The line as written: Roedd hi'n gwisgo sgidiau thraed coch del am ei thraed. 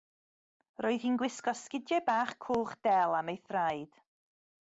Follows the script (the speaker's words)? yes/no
no